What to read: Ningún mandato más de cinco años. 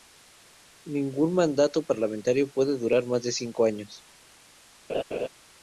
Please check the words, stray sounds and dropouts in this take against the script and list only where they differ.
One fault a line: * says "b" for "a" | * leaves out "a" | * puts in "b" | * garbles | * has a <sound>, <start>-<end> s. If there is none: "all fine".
* puts in "parlamentario puede durar"
* has a laugh, 4.9-5.3 s